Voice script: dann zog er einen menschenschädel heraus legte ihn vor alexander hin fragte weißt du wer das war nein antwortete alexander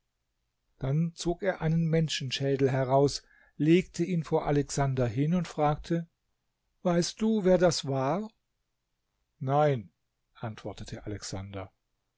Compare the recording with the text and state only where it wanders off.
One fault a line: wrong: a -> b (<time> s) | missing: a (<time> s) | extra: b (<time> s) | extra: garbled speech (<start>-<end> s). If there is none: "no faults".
extra: und (5.3 s)